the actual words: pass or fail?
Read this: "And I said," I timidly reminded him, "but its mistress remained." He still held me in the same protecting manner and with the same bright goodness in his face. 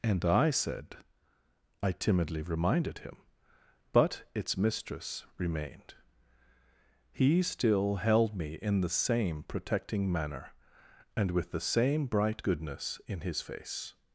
pass